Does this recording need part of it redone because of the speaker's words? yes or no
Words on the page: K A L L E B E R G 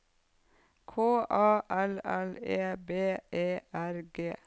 no